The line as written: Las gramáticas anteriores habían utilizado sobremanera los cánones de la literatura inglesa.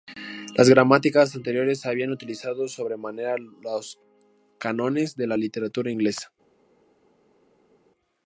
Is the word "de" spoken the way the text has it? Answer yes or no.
yes